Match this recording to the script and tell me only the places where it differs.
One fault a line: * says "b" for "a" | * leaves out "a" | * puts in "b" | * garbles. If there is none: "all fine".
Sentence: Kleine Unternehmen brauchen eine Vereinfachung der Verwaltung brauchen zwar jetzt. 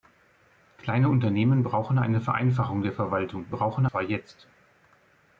all fine